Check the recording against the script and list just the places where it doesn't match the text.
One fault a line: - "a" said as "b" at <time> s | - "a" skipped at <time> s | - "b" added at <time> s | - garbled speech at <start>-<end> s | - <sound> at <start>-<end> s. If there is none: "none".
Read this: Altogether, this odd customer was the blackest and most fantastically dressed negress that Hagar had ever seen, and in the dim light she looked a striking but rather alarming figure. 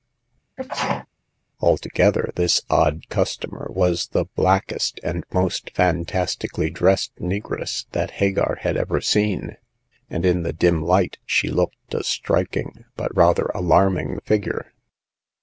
- sneeze at 0.6-1.1 s